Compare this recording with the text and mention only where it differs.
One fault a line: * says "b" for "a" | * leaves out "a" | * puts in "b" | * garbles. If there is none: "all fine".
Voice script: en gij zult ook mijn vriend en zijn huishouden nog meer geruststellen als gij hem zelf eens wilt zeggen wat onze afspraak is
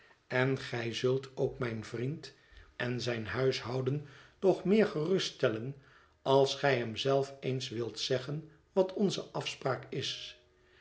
all fine